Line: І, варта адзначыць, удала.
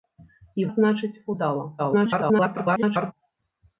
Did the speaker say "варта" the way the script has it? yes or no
no